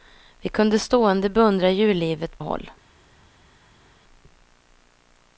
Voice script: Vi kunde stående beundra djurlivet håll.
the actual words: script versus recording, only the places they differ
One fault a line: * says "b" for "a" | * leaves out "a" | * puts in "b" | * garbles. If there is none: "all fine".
all fine